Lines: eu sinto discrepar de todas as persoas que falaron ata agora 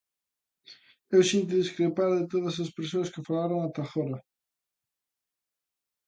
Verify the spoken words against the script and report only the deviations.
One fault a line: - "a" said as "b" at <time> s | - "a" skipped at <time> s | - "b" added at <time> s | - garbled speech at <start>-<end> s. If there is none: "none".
none